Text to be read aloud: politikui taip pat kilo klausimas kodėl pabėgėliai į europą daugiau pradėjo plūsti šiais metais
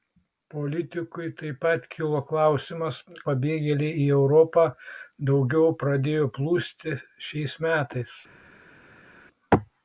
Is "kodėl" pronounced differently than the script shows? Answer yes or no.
yes